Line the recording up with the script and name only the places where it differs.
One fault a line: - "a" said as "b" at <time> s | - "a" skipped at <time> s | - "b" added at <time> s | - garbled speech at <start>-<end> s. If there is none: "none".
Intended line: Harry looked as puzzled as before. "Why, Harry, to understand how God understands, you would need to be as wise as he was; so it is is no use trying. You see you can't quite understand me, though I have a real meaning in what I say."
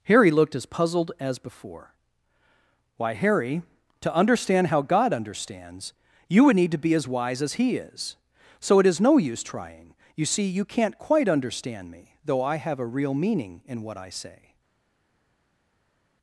- "was" said as "is" at 7.8 s
- "is" skipped at 9.0 s